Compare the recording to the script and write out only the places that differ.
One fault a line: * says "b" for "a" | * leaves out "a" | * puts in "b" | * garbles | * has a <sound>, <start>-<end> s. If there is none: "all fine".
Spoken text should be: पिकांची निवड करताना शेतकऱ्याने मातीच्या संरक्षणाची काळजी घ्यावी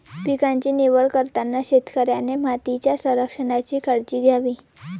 all fine